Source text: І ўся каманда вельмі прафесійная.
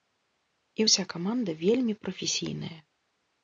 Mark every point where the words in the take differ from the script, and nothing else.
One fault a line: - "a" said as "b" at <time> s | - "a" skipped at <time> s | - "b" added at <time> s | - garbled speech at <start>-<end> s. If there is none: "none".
none